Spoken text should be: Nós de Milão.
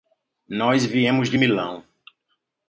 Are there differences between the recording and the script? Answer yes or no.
yes